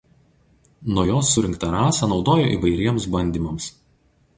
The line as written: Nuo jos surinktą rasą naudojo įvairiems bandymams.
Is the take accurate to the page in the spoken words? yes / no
yes